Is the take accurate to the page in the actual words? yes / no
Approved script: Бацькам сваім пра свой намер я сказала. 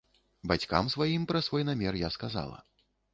yes